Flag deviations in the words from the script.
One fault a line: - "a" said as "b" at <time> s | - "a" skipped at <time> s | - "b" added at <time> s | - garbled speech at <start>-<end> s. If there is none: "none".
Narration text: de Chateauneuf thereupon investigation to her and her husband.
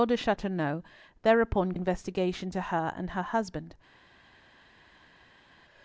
none